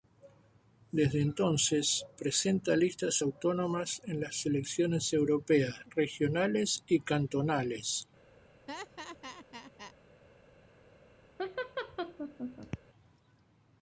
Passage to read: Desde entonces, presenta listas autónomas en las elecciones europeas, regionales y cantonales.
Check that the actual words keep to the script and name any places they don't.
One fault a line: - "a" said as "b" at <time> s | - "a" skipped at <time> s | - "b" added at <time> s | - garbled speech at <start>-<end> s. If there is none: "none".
none